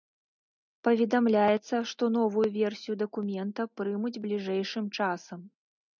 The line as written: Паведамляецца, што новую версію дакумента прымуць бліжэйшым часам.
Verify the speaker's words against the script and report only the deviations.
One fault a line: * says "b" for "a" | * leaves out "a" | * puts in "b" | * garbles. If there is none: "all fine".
all fine